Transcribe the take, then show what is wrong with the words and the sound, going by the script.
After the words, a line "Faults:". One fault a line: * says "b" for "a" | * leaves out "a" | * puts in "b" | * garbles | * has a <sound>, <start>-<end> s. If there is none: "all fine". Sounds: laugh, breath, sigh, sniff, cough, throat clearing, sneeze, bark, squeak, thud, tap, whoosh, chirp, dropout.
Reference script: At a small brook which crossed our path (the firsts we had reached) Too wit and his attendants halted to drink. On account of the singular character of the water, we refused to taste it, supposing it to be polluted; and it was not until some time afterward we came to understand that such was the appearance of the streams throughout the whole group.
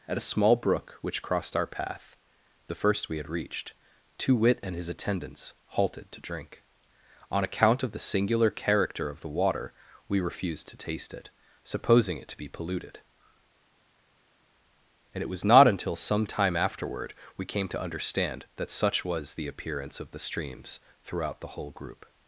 At a small brook which crossed our path (the first we had reached) Too wit and his attendants halted to drink. On account of the singular character of the water, we refused to taste it, supposing it to be polluted; and it was not until some time afterward we came to understand that such was the appearance of the streams throughout the whole group.
Faults:
* says "first" for "firsts"